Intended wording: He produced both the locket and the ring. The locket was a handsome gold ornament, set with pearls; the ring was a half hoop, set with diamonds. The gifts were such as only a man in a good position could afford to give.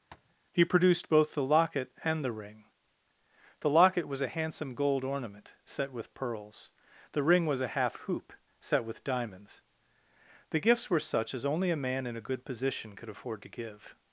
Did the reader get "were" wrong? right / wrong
right